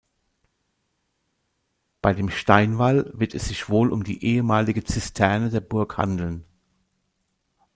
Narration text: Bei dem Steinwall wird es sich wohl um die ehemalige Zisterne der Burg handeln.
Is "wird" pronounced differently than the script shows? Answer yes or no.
no